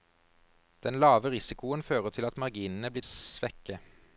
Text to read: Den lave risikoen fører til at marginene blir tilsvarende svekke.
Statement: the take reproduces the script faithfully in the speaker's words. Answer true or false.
false